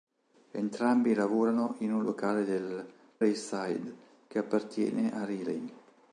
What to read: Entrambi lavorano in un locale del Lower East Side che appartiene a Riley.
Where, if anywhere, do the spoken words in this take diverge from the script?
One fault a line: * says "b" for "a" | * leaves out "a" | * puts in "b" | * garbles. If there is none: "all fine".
* leaves out "Lower"